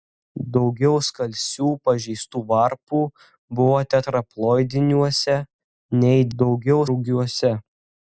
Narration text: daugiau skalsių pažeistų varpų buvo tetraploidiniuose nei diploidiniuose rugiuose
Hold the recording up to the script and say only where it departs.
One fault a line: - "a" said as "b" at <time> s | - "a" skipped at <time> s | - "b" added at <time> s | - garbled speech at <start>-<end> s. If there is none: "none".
- "diploidiniuose" said as "daugiau" at 6.4 s